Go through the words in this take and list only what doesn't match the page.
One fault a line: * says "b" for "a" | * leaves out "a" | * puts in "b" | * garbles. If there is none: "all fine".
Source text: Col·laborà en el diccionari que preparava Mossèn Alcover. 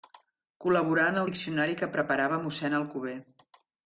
all fine